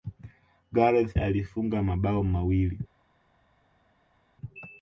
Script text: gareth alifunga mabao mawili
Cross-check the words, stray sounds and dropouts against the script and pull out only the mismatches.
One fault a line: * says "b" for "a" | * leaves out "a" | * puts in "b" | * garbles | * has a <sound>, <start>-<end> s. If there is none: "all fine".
all fine